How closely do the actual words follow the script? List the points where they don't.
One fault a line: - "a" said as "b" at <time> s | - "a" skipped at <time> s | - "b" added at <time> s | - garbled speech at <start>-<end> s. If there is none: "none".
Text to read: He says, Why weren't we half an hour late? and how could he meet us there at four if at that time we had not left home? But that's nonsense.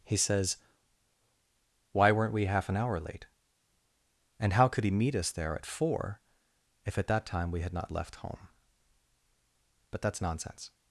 none